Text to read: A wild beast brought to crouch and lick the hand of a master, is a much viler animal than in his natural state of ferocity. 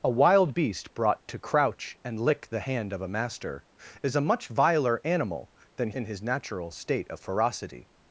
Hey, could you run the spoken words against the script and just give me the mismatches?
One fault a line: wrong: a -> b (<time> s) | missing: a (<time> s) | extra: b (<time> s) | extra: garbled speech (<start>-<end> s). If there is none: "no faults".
no faults